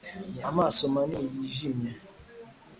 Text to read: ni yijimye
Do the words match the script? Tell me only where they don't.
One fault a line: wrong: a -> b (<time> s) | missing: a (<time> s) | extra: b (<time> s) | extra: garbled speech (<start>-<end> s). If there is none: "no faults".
extra: amaso manini (0.5 s)